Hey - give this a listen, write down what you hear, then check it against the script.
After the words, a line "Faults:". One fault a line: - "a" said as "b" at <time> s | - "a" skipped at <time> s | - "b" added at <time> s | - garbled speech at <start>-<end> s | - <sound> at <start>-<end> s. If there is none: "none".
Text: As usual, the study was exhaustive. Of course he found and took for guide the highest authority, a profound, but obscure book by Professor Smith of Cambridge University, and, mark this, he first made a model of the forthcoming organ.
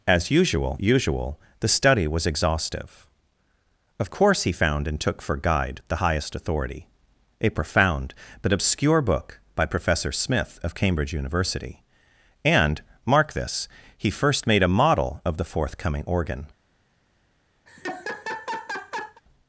As usual usual, the study was exhaustive. Of course he found and took for guide the highest authority, a profound, but obscure book by Professor Smith of Cambridge University, and, mark this, he first made a model of the forthcoming organ.
Faults:
- "usual" added at 0.8 s
- laugh at 17.7-19.2 s